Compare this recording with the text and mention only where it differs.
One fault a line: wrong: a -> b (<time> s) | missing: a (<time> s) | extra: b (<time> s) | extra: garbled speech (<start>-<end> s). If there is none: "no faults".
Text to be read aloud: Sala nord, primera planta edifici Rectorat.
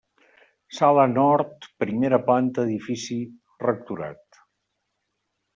no faults